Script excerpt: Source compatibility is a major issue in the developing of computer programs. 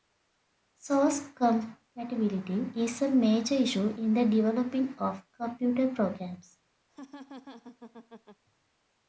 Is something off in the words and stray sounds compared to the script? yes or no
yes